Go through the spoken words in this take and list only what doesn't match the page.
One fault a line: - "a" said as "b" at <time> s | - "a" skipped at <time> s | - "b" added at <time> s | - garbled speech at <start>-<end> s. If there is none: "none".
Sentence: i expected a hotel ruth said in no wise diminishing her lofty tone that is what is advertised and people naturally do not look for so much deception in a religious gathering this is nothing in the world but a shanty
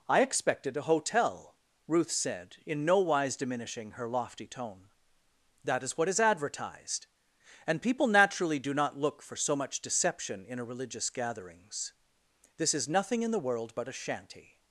- "gathering" said as "gatherings" at 11.1 s